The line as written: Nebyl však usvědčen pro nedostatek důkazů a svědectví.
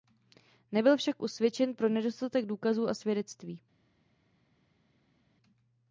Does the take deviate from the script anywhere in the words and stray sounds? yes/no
no